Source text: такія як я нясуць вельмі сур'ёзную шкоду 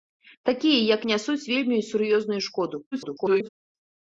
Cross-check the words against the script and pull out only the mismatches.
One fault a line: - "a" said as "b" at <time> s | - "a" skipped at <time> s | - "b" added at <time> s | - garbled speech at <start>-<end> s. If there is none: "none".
- "я" skipped at 1.0 s
- garbled speech at 2.9-3.5 s